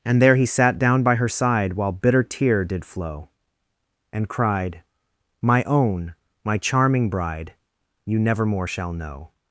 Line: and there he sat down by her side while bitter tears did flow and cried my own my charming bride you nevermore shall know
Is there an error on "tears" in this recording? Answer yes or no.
yes